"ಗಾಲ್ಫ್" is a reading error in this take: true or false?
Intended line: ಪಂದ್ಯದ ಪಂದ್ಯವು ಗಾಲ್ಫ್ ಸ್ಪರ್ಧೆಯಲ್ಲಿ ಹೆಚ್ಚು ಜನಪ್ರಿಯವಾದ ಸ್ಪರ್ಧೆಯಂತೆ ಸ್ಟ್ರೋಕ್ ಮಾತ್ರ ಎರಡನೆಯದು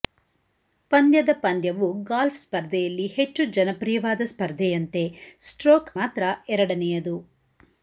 false